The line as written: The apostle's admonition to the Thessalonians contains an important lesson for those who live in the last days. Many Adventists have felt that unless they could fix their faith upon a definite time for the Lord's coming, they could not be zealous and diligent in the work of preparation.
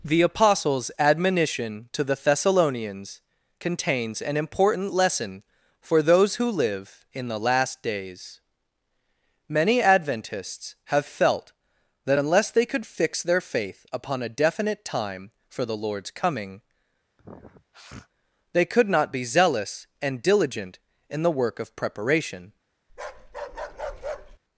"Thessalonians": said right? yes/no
yes